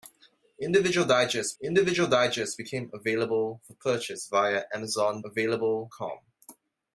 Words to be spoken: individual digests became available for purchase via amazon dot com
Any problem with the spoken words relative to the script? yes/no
yes